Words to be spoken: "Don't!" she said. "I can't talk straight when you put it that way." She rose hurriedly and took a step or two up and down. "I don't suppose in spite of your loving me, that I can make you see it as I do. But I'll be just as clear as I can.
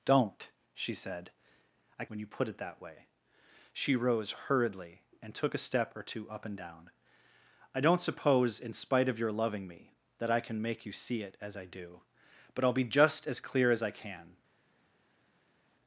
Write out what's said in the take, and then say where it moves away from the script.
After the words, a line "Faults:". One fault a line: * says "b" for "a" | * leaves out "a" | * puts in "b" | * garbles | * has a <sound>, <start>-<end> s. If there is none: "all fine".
"Don't!" she said. "I when you put it that way." She rose hurriedly and took a step or two up and down. "I don't suppose in spite of your loving me, that I can make you see it as I do. But I'll be just as clear as I can.
Faults:
* leaves out "can't talk straight"